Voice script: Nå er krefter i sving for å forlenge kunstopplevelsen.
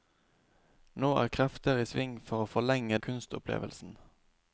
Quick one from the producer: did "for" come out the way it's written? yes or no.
yes